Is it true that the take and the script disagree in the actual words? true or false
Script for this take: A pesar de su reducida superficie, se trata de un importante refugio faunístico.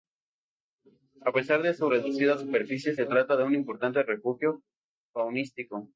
false